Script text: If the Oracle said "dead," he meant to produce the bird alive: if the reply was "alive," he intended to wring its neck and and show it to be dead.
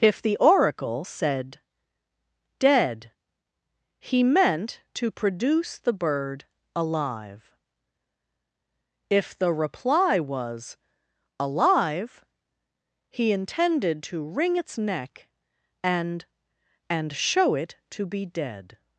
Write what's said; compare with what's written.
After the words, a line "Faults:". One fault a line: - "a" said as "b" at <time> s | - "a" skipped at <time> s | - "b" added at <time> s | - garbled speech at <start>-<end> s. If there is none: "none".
If the Oracle said "dead," he meant to produce the bird alive: if the reply was "alive," he intended to wring its neck and and show it to be dead.
Faults:
none